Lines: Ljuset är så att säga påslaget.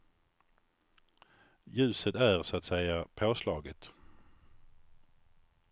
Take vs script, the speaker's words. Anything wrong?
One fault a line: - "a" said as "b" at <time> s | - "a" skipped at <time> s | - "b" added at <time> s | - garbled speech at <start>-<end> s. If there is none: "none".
none